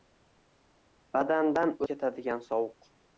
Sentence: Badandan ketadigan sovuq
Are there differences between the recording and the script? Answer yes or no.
no